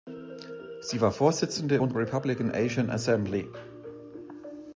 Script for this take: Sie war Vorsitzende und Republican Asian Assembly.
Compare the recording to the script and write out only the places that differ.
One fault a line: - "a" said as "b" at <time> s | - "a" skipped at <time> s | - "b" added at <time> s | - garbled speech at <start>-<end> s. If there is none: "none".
none